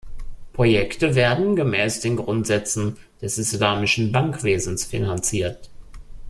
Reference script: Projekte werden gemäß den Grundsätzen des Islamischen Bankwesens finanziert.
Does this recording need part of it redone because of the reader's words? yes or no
no